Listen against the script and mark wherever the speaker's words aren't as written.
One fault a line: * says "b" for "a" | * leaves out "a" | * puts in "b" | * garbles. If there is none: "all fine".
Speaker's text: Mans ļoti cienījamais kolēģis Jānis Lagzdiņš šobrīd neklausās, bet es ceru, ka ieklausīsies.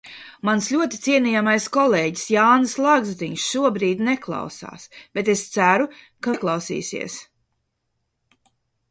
all fine